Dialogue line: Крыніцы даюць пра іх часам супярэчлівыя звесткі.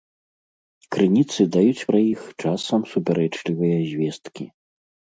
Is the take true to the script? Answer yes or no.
yes